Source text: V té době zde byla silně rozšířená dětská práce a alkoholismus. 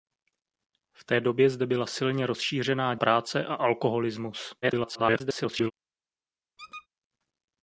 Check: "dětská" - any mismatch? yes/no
yes